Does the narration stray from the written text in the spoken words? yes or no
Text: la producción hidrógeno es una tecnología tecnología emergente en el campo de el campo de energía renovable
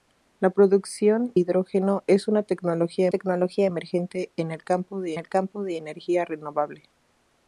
no